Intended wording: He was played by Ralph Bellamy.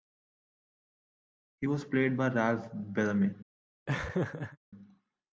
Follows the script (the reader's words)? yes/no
yes